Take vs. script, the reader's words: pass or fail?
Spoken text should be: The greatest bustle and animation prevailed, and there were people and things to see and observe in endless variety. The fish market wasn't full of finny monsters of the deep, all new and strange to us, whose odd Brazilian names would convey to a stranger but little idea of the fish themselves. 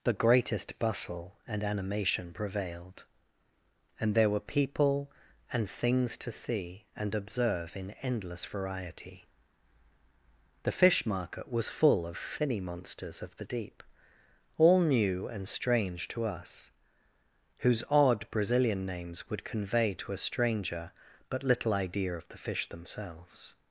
fail